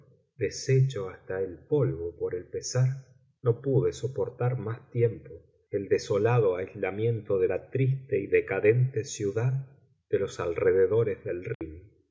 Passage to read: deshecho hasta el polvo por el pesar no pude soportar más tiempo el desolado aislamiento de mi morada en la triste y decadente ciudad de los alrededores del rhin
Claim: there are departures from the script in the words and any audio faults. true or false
true